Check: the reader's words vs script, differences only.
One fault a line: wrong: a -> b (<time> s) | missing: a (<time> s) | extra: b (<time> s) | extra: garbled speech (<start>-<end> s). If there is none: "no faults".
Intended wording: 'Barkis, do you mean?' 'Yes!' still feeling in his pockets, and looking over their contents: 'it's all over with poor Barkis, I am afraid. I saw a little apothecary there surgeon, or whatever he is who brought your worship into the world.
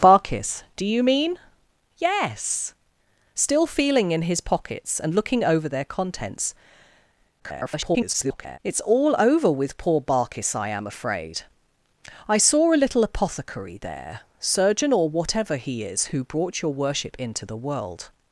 extra: garbled speech (7.4-8.6 s)